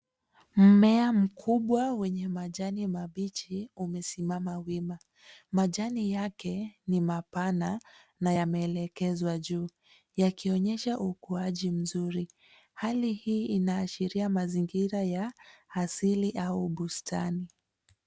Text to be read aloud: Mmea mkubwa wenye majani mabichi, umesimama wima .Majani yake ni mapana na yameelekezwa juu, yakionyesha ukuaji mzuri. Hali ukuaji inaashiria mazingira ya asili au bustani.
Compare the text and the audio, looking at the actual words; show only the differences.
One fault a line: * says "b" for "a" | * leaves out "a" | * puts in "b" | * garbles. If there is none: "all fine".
* says "hii" for "ukuaji"